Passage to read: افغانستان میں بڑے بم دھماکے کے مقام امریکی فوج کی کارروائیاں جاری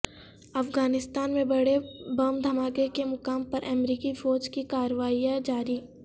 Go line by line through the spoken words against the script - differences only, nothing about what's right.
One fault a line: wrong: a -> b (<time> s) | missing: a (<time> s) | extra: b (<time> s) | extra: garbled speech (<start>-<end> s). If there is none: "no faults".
extra: پر (3.4 s)